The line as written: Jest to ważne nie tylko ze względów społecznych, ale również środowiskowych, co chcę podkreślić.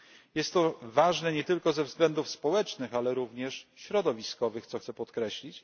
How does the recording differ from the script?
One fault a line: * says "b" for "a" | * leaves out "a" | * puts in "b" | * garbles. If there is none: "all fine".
all fine